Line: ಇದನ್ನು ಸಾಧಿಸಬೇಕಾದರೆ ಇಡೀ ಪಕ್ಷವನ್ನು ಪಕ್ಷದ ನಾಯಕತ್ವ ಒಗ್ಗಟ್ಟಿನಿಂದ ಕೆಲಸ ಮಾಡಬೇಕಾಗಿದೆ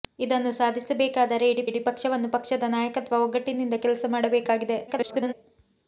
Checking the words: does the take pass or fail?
fail